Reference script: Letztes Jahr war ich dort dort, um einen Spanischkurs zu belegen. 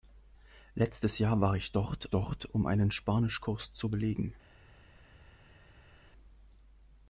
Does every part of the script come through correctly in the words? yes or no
yes